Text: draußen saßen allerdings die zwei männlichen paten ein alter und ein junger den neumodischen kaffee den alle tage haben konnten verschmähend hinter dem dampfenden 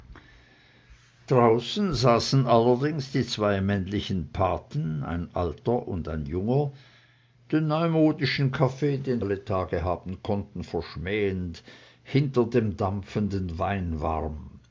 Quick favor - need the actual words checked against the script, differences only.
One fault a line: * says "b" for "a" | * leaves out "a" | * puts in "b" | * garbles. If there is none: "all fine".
all fine